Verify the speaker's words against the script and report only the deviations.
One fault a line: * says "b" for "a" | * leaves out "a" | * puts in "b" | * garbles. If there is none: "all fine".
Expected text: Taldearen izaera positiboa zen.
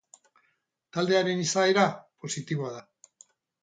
* says "da" for "zen"